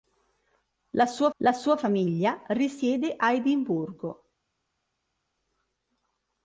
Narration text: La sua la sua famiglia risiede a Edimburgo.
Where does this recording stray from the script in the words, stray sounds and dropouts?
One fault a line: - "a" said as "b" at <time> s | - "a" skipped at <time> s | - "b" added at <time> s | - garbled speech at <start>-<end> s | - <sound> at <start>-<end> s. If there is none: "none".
none